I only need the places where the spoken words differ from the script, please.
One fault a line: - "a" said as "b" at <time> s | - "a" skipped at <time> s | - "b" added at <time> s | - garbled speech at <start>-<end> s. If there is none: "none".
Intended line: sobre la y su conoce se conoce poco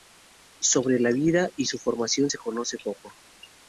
- "vida" added at 1.1 s
- "conoce" said as "formación" at 1.8 s